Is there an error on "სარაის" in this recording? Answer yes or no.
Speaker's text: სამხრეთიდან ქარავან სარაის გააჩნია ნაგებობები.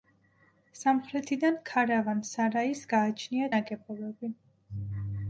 no